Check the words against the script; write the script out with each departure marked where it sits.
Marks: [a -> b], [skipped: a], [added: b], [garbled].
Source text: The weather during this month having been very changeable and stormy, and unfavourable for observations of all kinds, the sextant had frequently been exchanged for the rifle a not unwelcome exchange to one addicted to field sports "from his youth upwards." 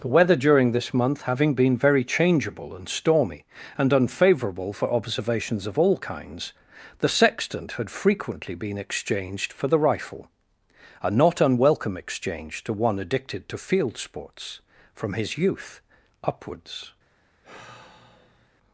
The weather during this month having been very changeable and stormy, and unfavourable for observations of all kinds, the sextant had frequently been exchanged for the rifle a not unwelcome exchange to one addicted to field sports "from his youth upwards."